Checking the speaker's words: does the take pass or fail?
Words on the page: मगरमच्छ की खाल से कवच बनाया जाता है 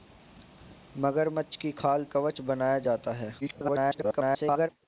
fail